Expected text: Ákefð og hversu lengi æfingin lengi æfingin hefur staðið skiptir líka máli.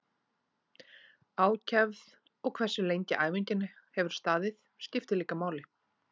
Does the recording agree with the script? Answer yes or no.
no